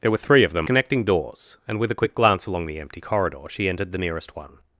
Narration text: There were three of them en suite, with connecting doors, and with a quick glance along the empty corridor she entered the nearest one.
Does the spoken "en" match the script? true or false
false